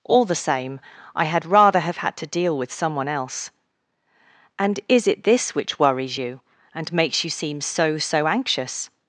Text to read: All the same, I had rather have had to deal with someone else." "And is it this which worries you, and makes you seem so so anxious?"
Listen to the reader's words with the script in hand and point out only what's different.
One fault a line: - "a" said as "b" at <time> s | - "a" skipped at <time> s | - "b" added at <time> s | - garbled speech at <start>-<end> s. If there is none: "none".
none